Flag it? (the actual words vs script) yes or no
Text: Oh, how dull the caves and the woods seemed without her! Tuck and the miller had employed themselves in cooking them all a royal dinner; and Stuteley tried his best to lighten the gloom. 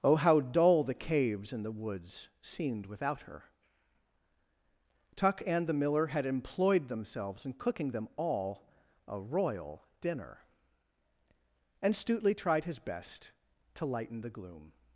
no